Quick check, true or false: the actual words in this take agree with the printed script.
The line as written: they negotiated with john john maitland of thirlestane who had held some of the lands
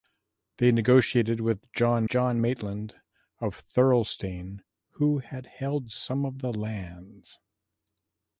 true